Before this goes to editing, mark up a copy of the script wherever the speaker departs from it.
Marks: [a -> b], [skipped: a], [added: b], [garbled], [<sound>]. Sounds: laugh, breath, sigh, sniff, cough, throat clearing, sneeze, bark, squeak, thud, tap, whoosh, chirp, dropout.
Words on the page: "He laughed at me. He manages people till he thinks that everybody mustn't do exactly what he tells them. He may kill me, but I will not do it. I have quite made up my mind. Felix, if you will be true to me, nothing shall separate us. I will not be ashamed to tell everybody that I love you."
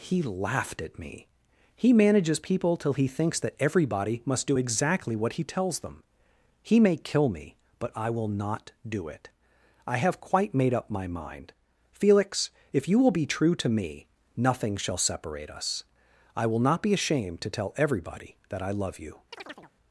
"He laughed at me. He manages people till he thinks that everybody [mustn't -> must] do exactly what he tells them. He may kill me, but I will not do it. I have quite made up my mind. Felix, if you will be true to me, nothing shall separate us. I will not be ashamed to tell everybody that I love you." [chirp]